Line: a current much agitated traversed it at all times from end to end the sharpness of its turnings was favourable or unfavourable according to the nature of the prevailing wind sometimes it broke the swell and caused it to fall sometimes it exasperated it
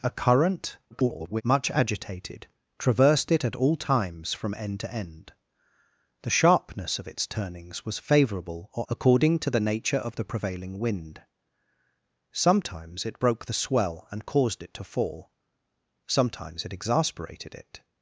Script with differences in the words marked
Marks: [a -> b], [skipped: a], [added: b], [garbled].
a current [garbled] much agitated traversed it at all times from end to end the sharpness of its turnings was favourable or [skipped: unfavourable] according to the nature of the prevailing wind sometimes it broke the swell and caused it to fall sometimes it exasperated it